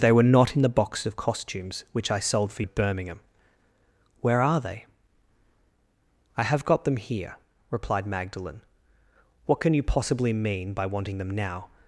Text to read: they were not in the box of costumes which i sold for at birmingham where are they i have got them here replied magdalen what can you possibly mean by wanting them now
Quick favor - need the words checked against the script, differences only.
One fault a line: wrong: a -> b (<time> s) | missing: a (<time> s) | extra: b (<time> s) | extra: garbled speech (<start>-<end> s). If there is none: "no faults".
no faults